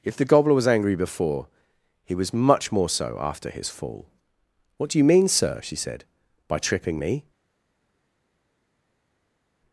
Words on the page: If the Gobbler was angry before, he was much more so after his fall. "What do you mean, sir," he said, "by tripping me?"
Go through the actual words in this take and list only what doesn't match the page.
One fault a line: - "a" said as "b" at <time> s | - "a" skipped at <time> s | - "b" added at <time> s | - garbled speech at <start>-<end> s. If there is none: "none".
- "he" said as "she" at 5.6 s